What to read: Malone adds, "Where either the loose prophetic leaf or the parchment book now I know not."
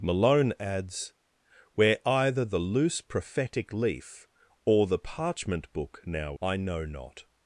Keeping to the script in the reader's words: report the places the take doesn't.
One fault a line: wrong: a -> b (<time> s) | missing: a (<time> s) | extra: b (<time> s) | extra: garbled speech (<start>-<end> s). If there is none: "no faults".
no faults